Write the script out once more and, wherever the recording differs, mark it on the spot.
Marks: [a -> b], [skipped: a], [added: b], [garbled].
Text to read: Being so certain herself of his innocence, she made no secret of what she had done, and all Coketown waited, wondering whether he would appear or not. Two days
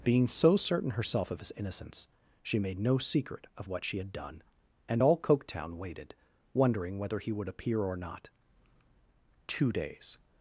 Being so certain herself of his innocence, she made no secret of what she had done, and all Coketown waited, wondering whether he would appear or not. Two days